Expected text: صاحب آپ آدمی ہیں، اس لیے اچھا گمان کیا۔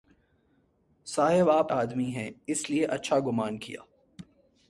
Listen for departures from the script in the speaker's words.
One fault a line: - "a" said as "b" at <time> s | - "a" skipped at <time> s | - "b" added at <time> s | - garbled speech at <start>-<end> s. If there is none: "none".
none